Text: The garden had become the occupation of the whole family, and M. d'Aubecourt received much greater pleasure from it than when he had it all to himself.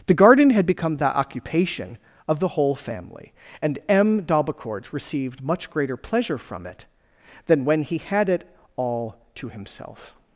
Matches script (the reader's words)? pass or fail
pass